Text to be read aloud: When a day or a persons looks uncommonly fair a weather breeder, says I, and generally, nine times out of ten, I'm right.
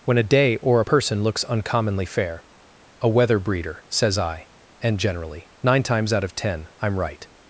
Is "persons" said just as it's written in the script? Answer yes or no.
no